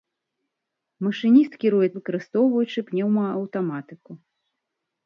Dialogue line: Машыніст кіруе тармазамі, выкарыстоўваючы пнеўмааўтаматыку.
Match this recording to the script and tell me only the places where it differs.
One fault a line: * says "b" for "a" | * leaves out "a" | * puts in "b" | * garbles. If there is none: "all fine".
* leaves out "тармазамі"